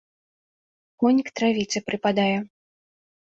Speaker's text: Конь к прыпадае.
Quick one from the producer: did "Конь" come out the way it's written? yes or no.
yes